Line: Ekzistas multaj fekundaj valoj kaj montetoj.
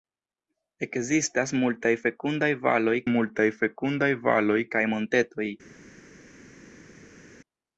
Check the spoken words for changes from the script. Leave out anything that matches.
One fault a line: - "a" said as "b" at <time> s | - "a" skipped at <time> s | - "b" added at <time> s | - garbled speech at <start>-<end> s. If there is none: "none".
- "multaj fekundaj valoj" added at 3.1 s